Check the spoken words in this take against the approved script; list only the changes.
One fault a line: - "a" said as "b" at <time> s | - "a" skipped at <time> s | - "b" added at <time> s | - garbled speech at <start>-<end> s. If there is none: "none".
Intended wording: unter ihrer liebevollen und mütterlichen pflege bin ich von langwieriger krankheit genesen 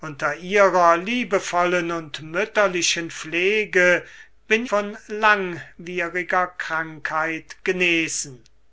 - "ich" skipped at 4.7 s